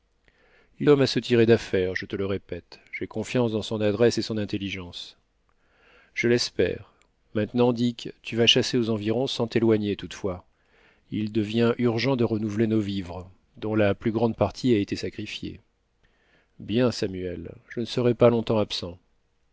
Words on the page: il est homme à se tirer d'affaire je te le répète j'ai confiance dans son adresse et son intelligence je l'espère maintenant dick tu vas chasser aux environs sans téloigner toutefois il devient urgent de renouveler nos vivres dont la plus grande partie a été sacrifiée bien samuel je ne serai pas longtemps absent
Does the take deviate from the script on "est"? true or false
true